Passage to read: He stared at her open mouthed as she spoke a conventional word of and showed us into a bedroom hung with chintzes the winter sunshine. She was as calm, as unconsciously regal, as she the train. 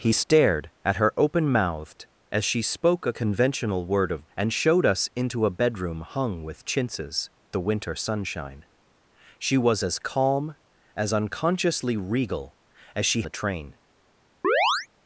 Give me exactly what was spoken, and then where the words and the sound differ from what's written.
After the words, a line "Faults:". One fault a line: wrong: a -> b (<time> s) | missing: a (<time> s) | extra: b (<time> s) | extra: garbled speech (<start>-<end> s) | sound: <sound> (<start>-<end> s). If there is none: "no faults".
He stared at her open mouthed as she spoke a conventional word of and showed us into a bedroom hung with chintzes the winter sunshine. She was as calm, as unconsciously regal, as she the train.
Faults:
sound: chirp (14.4-14.9 s)